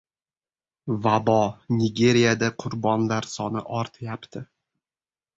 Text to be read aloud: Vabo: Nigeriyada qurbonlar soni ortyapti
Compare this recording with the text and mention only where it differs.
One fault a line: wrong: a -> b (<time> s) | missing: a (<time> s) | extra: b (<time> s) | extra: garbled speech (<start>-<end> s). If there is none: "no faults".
no faults